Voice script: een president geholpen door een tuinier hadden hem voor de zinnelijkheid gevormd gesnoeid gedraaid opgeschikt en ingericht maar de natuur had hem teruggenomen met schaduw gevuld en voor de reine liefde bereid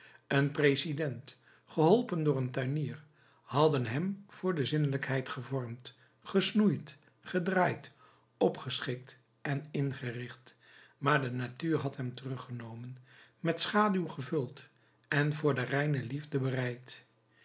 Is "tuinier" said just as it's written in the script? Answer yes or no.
yes